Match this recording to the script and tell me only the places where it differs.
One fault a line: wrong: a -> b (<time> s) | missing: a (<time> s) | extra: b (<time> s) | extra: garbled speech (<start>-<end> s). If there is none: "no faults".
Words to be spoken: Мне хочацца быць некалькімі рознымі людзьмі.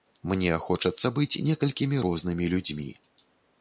no faults